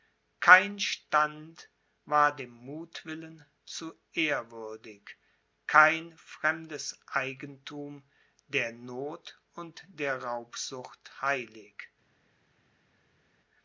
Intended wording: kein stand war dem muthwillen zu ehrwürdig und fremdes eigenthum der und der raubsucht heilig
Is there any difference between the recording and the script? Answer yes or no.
yes